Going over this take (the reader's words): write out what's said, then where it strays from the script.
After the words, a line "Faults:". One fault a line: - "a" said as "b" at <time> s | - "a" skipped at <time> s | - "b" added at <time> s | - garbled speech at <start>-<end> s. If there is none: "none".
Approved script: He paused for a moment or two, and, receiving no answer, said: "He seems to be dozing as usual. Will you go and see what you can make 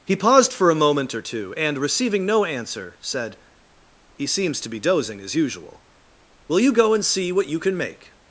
He paused for a moment or two, and, receiving no answer, said: "He seems to be dozing as usual. Will you go and see what you can make
Faults:
none